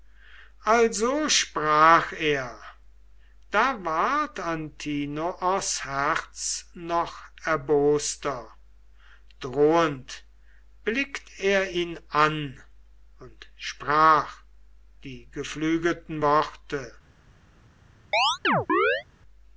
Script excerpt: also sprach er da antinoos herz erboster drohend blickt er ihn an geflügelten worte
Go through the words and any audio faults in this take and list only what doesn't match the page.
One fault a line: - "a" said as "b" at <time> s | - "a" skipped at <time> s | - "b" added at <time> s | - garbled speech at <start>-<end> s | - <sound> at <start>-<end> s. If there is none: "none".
- "ward" added at 3.9 s
- "noch" added at 6.7 s
- "und sprach die" added at 13.2 s
- chirp at 18.1-19.0 s